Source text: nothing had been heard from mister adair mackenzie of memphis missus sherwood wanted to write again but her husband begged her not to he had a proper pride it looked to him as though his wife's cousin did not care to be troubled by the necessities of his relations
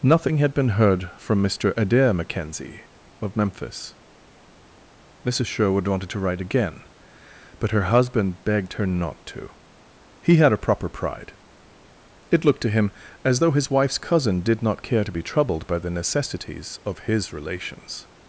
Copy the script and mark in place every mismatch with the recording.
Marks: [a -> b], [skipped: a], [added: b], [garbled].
nothing had been heard from mister adair mackenzie of memphis missus sherwood wanted to write again but her husband begged her not to he had a proper pride it looked to him as though his wife's cousin did not care to be troubled by the necessities of his relations